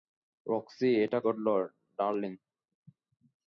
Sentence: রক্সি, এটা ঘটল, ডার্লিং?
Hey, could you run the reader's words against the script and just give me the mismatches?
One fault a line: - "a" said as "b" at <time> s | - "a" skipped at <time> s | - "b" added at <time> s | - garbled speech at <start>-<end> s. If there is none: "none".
none